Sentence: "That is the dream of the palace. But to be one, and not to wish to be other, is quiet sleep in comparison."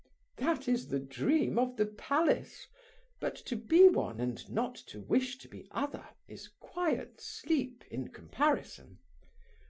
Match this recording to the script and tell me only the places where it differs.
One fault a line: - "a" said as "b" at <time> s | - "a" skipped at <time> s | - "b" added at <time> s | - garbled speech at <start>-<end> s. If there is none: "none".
none